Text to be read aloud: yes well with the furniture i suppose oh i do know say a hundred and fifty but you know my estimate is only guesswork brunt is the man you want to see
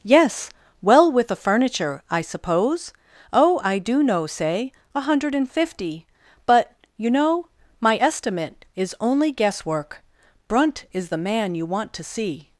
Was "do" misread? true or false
false